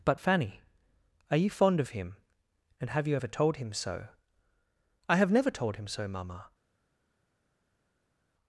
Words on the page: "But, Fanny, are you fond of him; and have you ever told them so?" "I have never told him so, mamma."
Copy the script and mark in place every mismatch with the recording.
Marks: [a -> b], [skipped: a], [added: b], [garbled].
"But, Fanny, are you fond of him; and have you ever told [them -> him] so?" "I have never told him so, mamma."